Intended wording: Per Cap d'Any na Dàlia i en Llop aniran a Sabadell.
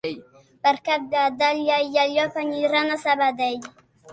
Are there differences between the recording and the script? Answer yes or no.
yes